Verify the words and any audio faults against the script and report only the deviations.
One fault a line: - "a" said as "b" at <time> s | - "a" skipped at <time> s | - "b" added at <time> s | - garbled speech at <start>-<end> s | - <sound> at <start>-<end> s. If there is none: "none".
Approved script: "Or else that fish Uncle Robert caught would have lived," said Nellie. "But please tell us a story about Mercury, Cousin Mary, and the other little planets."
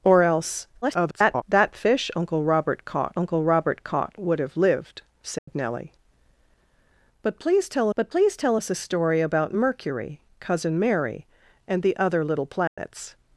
- garbled speech at 0.8-1.4 s
- "Uncle Robert caught" added at 3.2 s
- dropout at 5.4-5.5 s
- "but please tell" added at 8.0 s
- dropout at 12.7-12.8 s